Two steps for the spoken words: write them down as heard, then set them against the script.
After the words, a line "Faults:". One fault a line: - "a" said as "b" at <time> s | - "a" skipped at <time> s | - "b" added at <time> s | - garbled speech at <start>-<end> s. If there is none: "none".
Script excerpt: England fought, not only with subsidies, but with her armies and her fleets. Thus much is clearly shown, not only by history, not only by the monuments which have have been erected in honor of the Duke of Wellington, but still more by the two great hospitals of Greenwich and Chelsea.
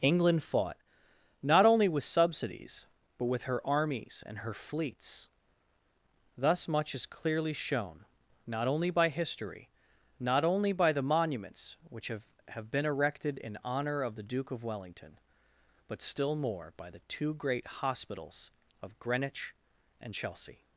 England fought, not only with subsidies, but with her armies and her fleets. Thus much is clearly shown, not only by history, not only by the monuments which have have been erected in honor of the Duke of Wellington, but still more by the two great hospitals of Greenwich and Chelsea.
Faults:
none